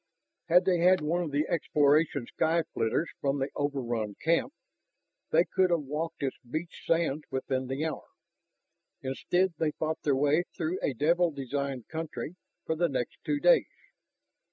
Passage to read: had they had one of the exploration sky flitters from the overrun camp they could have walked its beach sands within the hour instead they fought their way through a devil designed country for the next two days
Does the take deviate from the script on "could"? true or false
false